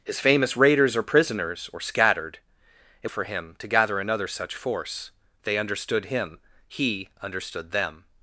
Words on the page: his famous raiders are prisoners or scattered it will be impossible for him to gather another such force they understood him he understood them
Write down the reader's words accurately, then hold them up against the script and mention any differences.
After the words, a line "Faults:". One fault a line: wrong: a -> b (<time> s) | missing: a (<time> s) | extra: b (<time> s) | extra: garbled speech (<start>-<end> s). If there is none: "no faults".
his famous raiders are prisoners or scattered it for him to gather another such force they understood him he understood them
Faults:
missing: will be impossible (3.1 s)